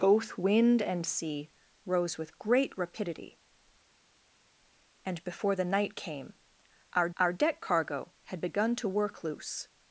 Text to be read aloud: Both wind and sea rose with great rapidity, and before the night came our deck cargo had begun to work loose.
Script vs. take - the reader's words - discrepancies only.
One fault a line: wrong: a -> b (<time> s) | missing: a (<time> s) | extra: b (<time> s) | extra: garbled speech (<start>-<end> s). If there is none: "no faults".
extra: our (7.2 s)